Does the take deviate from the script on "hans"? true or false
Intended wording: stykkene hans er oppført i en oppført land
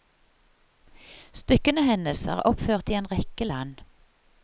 true